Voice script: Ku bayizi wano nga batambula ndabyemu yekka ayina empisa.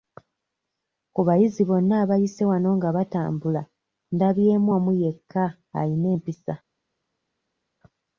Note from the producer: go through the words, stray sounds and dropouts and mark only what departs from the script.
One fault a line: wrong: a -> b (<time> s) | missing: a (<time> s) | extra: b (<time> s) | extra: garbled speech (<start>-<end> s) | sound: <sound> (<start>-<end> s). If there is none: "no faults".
extra: bonna abayise (1.7 s)
extra: omu (4.8 s)